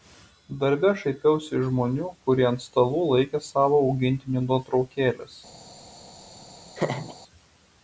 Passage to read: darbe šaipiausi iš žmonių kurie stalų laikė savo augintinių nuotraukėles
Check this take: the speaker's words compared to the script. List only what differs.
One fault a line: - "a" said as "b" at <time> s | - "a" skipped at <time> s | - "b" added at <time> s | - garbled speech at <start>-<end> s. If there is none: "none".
- "ant" added at 2.5 s